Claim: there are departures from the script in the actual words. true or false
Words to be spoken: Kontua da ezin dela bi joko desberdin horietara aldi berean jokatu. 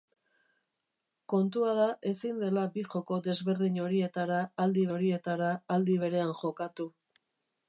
true